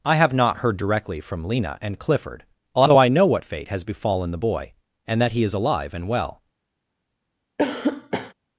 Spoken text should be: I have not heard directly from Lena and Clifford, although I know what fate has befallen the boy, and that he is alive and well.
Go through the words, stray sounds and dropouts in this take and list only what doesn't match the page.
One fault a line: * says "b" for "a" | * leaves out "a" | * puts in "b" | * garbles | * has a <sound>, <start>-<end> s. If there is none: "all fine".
* has a cough, 7.6-8.3 s